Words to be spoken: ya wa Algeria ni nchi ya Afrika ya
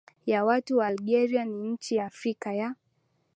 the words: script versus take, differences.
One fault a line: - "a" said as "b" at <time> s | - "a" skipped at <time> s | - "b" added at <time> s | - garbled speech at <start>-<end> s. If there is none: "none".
- "watu" added at 0.5 s